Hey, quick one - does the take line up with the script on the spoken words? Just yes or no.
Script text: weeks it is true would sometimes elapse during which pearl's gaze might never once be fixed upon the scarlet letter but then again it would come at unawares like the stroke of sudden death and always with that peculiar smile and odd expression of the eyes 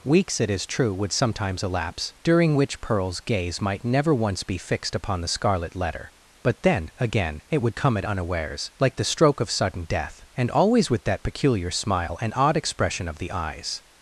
yes